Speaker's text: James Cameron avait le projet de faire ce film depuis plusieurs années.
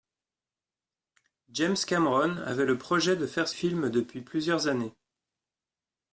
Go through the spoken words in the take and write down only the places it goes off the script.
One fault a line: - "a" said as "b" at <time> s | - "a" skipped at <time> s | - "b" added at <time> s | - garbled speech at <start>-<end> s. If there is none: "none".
- "ce" skipped at 3.5 s